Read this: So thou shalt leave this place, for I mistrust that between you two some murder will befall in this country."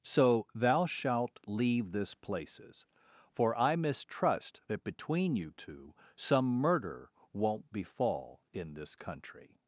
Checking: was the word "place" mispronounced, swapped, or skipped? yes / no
yes